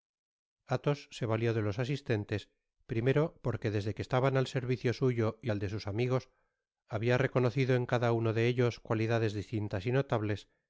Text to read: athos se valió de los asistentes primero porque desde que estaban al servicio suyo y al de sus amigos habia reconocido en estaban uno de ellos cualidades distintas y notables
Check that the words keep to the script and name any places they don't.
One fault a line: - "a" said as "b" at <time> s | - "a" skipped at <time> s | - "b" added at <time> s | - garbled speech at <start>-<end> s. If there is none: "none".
- "estaban" said as "cada" at 7.9 s